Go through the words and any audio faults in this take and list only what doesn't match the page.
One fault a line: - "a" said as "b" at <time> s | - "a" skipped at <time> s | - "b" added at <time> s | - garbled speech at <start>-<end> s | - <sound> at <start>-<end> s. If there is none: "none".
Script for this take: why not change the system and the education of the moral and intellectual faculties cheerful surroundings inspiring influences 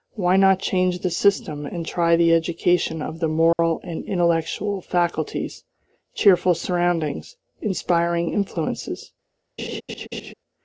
- "try" added at 1.8 s
- dropout at 3.5-3.6 s
- laugh at 9.6-10.3 s